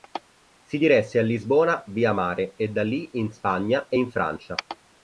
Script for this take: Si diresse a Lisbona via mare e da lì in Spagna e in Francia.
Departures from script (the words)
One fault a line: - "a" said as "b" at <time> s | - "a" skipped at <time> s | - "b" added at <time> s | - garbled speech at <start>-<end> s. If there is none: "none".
none